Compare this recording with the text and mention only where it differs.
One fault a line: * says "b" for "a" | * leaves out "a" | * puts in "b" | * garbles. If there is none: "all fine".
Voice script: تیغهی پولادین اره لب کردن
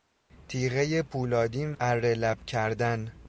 all fine